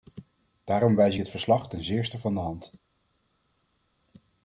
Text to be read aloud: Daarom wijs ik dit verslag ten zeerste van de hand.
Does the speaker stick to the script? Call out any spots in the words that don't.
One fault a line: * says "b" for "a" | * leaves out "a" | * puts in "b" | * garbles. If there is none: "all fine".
* leaves out "ik"